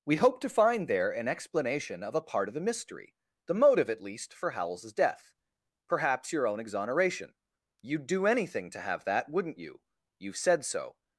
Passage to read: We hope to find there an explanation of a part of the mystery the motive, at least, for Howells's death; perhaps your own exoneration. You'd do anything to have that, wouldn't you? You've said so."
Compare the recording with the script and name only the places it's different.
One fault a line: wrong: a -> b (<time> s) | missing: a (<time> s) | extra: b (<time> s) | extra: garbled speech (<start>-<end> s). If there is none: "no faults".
no faults